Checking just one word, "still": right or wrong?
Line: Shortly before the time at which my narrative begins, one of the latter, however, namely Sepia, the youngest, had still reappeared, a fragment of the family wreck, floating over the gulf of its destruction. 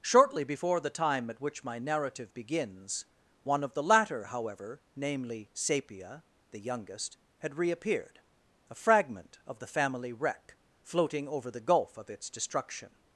wrong